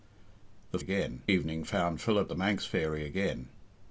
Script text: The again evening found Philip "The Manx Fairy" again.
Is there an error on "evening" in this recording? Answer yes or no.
no